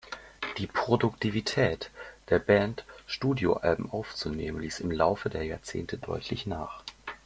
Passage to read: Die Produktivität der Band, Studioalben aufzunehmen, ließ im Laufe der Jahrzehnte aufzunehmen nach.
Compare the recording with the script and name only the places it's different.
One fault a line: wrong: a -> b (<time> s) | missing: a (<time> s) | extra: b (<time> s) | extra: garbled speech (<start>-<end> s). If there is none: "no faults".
wrong: aufzunehmen -> deutlich (6.0 s)